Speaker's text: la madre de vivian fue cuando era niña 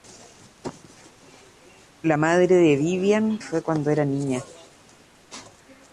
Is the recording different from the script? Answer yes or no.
no